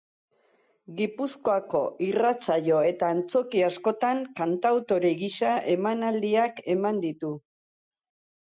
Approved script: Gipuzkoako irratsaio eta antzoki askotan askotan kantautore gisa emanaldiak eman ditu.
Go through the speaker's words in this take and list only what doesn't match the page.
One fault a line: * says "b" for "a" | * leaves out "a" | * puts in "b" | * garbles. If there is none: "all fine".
* leaves out "askotan"